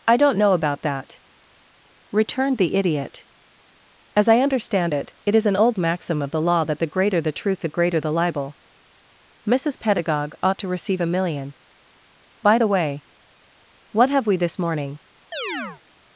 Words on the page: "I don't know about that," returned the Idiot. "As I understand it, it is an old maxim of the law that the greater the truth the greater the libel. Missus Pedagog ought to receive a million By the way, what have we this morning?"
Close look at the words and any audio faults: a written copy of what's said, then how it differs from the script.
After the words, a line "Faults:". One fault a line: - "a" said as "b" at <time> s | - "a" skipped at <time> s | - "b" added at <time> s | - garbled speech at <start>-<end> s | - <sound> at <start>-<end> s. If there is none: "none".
"I don't know about that," returned the Idiot. "As I understand it, it is an old maxim of the law that the greater the truth the greater the libel. Missus Pedagog ought to receive a million By the way, what have we this morning?"
Faults:
- chirp at 15.3-15.8 s